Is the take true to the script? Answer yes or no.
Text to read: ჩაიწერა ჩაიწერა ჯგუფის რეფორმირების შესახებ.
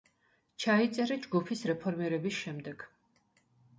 no